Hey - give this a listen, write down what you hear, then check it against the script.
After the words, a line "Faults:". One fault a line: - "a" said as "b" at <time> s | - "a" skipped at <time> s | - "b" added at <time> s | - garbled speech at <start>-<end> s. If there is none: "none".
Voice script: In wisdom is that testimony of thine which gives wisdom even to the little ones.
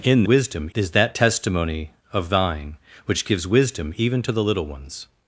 In wisdom is that testimony of thine which gives wisdom even to the little ones.
Faults:
none